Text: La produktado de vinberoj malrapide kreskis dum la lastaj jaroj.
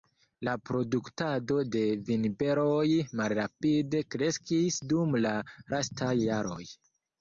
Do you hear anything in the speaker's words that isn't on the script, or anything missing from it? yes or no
no